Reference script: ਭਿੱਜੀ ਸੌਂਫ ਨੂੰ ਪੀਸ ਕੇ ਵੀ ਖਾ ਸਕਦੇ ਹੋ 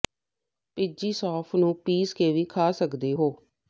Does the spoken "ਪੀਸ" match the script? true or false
true